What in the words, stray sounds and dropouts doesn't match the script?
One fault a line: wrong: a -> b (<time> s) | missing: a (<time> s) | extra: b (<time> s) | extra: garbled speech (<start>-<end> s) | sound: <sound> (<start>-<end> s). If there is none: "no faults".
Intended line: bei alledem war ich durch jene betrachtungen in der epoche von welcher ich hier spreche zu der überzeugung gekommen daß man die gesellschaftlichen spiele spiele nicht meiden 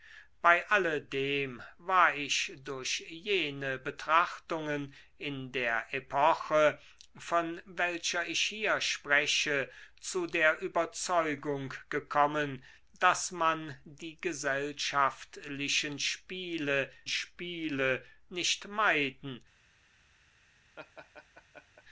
sound: laugh (20.8-21.8 s)